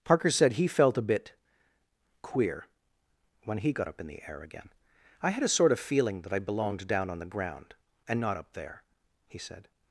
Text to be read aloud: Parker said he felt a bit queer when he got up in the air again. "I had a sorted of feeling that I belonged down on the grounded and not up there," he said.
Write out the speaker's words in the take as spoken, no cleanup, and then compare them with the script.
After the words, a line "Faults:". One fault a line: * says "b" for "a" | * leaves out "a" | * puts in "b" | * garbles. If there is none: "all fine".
Parker said he felt a bit queer when he got up in the air again. "I had a sort of feeling that I belonged down on the ground and not up there," he said.
Faults:
* says "sort" for "sorted"
* says "ground" for "grounded"